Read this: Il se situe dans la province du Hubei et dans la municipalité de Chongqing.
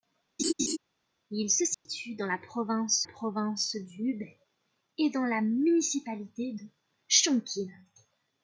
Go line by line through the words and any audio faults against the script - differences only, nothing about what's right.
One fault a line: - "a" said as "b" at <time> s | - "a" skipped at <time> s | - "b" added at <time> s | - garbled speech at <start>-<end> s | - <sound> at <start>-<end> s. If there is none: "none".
- laugh at 0.4-0.8 s
- dropout at 1.7-1.9 s
- "province" added at 3.0 s